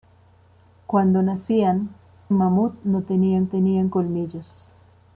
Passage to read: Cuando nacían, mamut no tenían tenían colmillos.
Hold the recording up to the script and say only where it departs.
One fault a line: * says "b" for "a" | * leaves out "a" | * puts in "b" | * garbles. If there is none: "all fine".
all fine